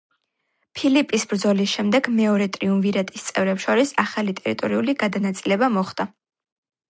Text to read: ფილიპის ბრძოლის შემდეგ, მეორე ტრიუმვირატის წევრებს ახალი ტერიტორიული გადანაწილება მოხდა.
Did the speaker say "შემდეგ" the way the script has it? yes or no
yes